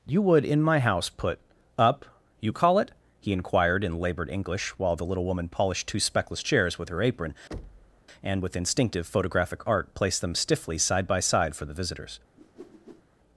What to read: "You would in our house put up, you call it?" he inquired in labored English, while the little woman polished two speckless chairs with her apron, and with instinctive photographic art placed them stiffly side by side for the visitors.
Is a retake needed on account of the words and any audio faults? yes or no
yes